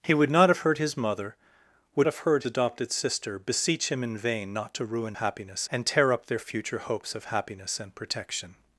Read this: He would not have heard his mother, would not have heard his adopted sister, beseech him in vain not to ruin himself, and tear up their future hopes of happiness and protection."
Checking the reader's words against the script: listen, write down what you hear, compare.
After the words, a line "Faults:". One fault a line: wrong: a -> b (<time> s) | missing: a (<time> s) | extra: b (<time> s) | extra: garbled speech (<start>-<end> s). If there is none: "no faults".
He would not have heard his mother, would have heard adopted sister, beseech him in vain not to ruin happiness, and tear up their future hopes of happiness and protection."
Faults:
missing: not (2.1 s)
missing: his (2.4 s)
wrong: himself -> happiness (5.1 s)